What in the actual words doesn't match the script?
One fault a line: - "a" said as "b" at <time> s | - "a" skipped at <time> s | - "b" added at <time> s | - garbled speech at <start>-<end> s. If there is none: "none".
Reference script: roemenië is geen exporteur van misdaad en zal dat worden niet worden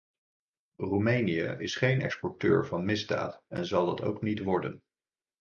- "worden" said as "ook" at 4.0 s